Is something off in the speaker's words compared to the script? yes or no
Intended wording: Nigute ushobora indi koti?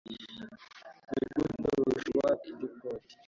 no